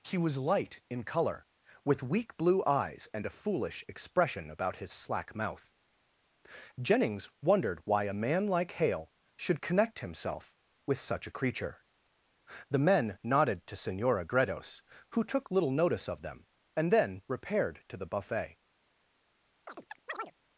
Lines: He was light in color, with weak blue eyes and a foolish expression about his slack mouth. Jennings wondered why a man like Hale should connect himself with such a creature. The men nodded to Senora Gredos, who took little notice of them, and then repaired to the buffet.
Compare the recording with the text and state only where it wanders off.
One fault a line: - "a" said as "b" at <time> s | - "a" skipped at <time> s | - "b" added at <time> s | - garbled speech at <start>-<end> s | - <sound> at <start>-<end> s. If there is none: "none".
- chirp at 19.7-20.3 s